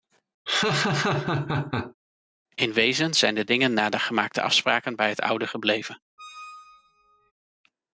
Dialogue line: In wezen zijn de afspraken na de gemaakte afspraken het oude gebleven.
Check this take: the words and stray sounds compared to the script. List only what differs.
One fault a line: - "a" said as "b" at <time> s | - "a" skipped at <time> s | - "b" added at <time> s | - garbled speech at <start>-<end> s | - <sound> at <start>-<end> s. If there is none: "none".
- laugh at 0.5-1.9 s
- "afspraken" said as "dingen" at 3.4 s
- "bij" added at 5.0 s
- squeak at 6.2-7.3 s